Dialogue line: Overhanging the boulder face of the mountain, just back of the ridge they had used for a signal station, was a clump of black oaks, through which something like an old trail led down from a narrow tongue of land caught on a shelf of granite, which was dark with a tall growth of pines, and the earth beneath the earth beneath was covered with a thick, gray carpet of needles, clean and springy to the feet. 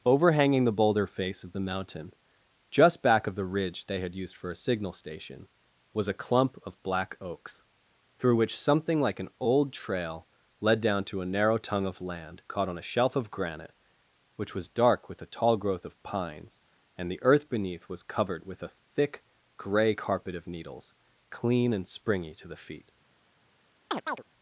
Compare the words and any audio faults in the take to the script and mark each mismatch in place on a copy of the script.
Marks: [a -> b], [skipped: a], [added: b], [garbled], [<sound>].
Overhanging the boulder face of the mountain, just back of the ridge they had used for a signal station, was a clump of black oaks, through which something like an old trail led down [from -> to] a narrow tongue of land caught on a shelf of granite, which was dark with a tall growth of pines, and the earth beneath [skipped: the earth beneath] was covered with a thick, gray carpet of needles, clean and springy to the feet. [chirp]